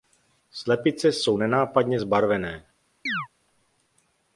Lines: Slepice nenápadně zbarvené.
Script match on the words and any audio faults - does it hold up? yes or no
no